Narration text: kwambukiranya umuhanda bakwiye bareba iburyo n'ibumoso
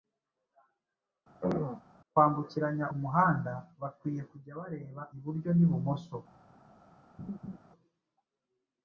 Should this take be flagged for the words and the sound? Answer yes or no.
yes